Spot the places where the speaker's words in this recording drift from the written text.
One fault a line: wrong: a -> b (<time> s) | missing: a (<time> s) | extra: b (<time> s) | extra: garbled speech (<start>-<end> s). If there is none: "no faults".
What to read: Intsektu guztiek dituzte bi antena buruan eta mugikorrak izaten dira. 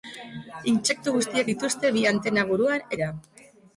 missing: eta mugikorrak izaten (2.9 s)